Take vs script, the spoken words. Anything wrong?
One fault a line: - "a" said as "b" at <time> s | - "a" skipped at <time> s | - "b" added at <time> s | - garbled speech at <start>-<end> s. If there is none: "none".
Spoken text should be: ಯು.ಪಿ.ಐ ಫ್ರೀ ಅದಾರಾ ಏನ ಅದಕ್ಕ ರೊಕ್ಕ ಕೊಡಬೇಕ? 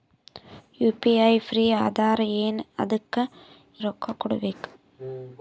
none